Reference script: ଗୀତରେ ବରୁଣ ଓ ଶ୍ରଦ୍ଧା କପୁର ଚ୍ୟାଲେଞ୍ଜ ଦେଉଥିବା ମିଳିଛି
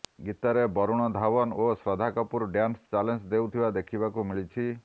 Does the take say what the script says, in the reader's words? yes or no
no